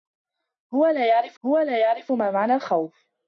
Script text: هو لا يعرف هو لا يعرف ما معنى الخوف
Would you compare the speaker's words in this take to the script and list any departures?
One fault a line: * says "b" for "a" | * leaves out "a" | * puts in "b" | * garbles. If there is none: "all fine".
all fine